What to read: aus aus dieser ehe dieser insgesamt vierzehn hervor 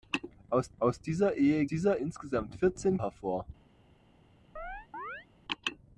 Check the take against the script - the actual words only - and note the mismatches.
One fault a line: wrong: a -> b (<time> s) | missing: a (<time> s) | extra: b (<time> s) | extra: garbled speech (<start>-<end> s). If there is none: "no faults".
no faults